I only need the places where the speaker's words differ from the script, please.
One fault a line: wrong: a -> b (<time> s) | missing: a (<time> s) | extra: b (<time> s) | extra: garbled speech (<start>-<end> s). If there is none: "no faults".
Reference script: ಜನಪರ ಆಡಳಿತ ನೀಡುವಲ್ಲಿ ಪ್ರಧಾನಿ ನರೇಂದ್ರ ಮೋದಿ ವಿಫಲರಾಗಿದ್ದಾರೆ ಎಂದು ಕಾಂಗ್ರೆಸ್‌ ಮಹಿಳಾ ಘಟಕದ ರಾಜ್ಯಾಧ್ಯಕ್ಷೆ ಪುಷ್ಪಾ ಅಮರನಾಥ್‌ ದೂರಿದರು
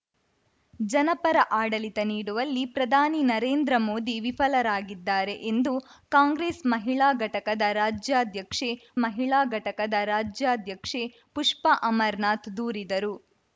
extra: ಮಹಿಳಾ ಘಟಕದ ರಾಜ್ಯಾಧ್ಯಕ್ಷೆ (9.0 s)